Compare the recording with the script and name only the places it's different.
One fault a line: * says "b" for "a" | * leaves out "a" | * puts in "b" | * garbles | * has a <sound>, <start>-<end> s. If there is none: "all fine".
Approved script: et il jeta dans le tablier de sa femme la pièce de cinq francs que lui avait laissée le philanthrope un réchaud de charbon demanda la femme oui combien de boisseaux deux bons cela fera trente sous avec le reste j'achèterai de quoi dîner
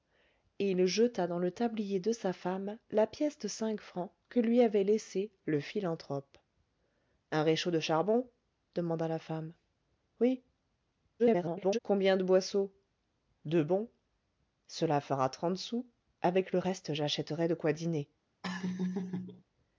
* garbles
* has a laugh, 18.4-19.4 s